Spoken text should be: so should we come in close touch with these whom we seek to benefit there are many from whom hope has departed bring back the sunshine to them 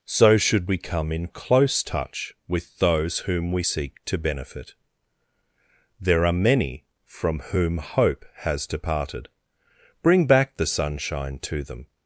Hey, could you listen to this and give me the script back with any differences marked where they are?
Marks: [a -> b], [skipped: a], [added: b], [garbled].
so should we come in close touch with [these -> those] whom we seek to benefit there are many from whom hope has departed bring back the sunshine to them